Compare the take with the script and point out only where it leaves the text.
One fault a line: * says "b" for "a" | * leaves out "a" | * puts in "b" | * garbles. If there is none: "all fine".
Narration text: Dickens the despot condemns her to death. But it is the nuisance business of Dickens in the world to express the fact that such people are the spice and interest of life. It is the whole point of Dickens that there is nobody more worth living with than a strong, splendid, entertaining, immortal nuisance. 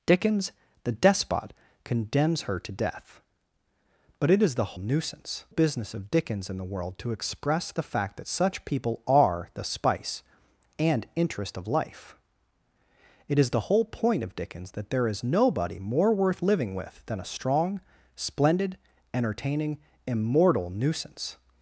all fine